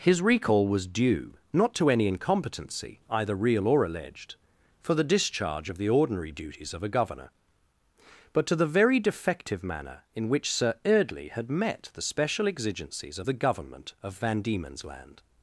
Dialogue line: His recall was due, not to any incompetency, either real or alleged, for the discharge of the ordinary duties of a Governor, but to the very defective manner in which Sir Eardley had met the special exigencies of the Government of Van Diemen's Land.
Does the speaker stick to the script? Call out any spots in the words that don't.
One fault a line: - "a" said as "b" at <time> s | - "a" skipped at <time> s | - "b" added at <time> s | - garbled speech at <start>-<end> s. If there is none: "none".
none